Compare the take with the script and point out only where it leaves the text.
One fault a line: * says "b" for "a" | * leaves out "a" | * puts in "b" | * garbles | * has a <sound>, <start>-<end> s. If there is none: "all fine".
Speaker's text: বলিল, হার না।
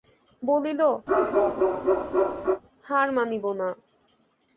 * has a bark, 1.1-2.6 s
* puts in "মানিব"